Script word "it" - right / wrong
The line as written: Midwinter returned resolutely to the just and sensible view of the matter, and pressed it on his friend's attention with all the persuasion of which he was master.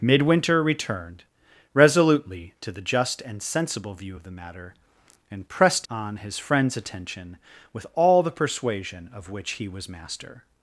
wrong